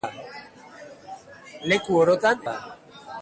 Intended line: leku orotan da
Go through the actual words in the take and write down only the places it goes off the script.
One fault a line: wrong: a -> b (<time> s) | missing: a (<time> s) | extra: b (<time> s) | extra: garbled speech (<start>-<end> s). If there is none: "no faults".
no faults